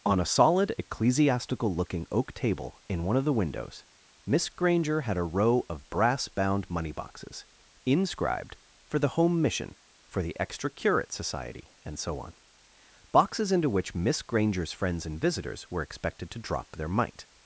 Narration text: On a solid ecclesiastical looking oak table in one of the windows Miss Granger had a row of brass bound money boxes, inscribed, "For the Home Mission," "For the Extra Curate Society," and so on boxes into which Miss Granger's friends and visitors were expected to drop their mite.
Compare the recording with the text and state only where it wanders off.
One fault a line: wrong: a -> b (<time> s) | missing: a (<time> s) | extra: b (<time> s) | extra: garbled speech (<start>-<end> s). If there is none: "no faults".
no faults